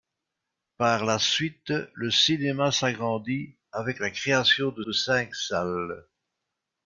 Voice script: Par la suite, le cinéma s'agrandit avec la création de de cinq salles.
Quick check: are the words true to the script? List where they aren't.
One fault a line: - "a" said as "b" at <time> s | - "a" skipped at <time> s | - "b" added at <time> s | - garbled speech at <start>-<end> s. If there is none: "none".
none